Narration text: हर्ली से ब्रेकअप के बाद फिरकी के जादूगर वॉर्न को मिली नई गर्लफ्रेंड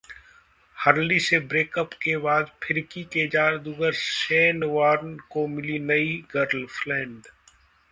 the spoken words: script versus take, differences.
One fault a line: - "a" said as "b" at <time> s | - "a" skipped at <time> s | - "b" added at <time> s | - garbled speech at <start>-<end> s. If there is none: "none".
- "शेन" added at 3.9 s